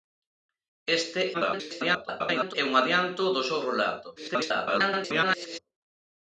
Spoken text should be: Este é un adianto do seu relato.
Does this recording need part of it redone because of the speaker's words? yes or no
yes